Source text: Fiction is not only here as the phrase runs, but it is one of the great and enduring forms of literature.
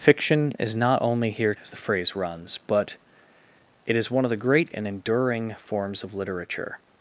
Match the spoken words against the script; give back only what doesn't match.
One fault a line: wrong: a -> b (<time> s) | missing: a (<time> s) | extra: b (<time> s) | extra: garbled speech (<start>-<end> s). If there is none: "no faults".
no faults